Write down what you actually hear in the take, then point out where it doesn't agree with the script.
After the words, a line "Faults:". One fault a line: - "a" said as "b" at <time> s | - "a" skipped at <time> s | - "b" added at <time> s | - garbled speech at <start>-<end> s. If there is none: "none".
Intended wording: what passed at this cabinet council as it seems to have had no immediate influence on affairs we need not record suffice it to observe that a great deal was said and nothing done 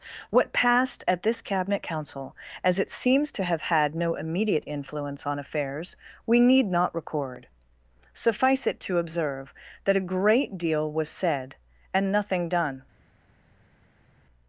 what passed at this cabinet council as it seems to have had no immediate influence on affairs we need not record suffice it to observe that a great deal was said and nothing done
Faults:
none